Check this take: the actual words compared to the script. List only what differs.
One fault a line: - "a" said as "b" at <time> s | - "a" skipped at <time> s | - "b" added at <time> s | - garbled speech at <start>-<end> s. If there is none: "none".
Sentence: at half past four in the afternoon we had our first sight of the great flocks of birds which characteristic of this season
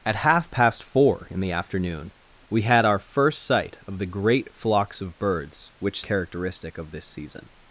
none